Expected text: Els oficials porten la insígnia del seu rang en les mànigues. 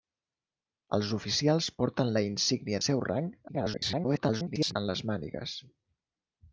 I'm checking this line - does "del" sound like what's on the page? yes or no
no